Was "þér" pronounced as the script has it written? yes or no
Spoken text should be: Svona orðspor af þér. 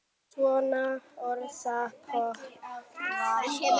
yes